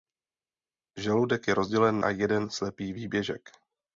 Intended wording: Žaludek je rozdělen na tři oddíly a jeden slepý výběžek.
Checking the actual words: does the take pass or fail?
fail